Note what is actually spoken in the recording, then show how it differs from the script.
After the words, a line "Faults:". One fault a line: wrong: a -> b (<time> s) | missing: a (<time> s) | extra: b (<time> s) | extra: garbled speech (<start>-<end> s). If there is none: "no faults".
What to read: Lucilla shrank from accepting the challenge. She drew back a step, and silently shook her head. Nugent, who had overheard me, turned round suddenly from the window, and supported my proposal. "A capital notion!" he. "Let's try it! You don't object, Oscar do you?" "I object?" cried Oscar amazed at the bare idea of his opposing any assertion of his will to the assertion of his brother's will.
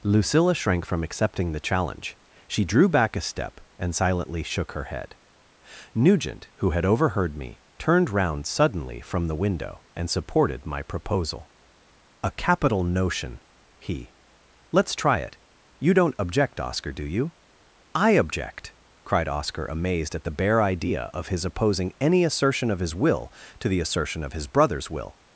Lucilla shrank from accepting the challenge. She drew back a step, and silently shook her head. Nugent, who had overheard me, turned round suddenly from the window, and supported my proposal. "A capital notion!" he. "Let's try it! You don't object, Oscar do you?" "I object?" cried Oscar amazed at the bare idea of his opposing any assertion of his will to the assertion of his brother's will.
Faults:
no faults